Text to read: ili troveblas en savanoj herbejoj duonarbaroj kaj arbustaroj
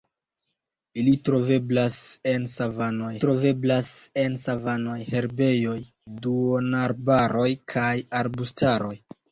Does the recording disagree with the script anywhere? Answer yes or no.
yes